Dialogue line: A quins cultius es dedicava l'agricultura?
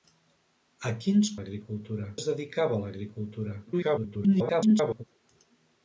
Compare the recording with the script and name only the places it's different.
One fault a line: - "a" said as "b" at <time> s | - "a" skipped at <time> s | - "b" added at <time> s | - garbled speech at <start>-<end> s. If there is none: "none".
- "cultius" said as "l'agricultura" at 1.4 s
- garbled speech at 3.7-5.0 s